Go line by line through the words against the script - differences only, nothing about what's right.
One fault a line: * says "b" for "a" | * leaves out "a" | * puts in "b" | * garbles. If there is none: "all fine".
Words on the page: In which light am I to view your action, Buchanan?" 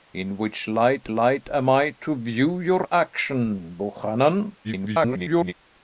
* puts in "light"
* garbles